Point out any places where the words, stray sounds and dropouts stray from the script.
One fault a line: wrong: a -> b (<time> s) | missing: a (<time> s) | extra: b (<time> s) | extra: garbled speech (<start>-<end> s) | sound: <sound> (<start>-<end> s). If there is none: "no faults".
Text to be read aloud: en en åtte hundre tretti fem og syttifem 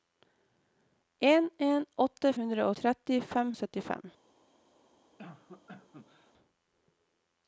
sound: cough (5.2-6.3 s)